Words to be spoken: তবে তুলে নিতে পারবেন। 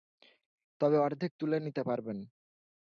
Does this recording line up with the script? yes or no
no